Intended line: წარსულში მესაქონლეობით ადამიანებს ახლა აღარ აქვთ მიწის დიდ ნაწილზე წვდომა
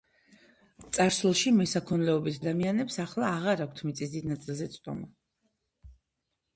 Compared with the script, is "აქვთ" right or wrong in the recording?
right